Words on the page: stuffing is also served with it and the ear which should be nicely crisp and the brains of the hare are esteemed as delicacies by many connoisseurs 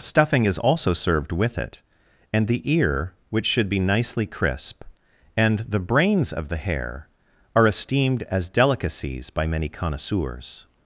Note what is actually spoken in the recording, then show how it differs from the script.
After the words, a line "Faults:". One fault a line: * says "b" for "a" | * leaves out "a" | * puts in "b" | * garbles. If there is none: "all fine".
stuffing is also served with it and the ear which should be nicely crisp and the brains of the hare are esteemed as delicacies by many connoisseurs
Faults:
all fine